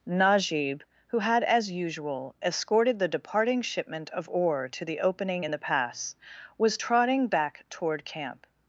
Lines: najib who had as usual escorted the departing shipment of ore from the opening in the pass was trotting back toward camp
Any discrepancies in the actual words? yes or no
yes